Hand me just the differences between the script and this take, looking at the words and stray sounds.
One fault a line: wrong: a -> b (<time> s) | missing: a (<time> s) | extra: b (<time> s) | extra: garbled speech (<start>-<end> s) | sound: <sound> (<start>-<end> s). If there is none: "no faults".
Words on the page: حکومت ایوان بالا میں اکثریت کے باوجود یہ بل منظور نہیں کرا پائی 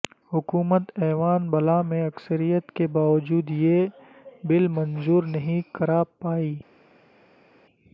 no faults